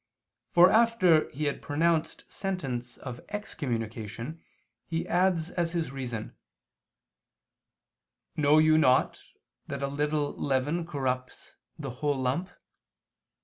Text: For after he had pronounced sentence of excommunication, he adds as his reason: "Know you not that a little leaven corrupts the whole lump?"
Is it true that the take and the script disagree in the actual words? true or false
false